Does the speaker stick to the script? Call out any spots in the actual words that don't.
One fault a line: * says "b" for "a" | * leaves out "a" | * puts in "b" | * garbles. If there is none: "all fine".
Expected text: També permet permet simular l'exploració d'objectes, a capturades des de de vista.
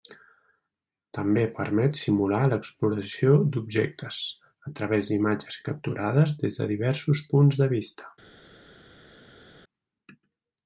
* leaves out "permet"
* puts in "través d'imatges"
* puts in "diversos punts"